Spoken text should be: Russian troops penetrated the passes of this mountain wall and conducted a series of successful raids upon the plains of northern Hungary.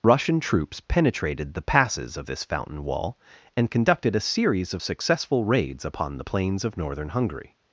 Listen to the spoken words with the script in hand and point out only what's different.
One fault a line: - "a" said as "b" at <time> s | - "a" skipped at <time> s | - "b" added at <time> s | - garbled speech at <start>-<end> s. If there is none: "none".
- "mountain" said as "fountain" at 2.4 s